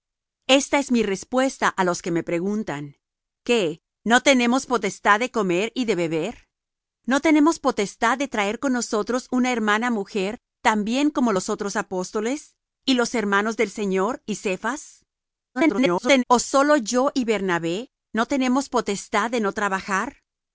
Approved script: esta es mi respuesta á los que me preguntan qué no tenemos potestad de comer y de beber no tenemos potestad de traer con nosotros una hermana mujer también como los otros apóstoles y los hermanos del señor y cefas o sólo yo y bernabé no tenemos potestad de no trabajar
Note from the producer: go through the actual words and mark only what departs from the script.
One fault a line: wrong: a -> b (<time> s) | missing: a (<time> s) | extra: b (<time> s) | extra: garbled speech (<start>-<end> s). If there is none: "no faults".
extra: garbled speech (15.5-16.2 s)